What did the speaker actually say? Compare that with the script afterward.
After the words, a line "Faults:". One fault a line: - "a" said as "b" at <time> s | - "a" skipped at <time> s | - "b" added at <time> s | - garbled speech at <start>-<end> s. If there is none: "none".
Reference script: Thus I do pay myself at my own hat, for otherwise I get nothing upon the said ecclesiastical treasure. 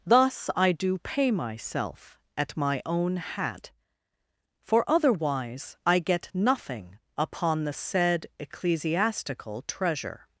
Thus I do pay myself at my own hat, for otherwise I get nothing upon the said ecclesiastical treasure.
Faults:
none